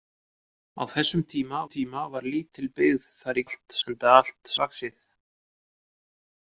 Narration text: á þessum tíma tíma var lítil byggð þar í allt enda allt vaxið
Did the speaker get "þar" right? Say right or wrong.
right